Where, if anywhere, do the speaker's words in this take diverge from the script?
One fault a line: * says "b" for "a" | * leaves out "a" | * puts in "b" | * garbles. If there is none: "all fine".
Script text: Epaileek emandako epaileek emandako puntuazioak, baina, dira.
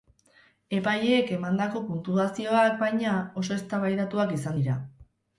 * says "puntuazioak baina oso eztabaidatuak izan" for "epaileek emandako puntuazioak baina"